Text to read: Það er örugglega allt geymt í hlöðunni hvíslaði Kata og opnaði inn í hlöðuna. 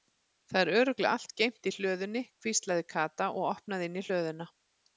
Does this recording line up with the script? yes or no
yes